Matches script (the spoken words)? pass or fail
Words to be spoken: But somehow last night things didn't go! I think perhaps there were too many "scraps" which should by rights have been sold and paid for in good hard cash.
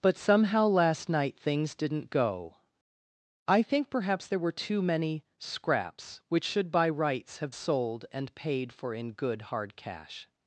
fail